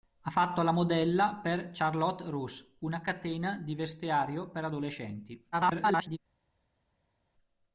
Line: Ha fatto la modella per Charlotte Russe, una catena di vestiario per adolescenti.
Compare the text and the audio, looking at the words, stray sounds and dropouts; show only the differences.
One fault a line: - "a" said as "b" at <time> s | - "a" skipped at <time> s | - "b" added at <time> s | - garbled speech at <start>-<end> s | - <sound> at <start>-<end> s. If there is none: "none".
- garbled speech at 5.5-6.2 s